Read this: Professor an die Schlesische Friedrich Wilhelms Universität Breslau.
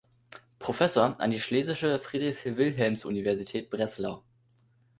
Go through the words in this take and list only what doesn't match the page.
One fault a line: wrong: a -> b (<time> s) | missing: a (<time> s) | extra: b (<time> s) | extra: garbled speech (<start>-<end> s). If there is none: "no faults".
no faults